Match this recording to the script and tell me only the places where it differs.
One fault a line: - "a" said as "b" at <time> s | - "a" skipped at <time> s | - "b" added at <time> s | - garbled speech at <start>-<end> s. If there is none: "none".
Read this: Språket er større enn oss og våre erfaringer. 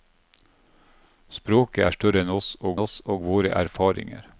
- "oss og" added at 2.8 s